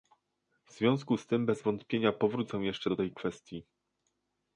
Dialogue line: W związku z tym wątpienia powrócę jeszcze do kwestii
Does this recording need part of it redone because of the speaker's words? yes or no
yes